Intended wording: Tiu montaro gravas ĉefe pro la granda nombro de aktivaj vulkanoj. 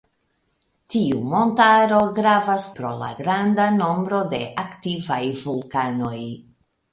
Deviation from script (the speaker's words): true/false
true